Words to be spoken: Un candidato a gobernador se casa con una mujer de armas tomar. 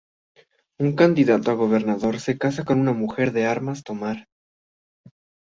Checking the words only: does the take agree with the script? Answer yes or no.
yes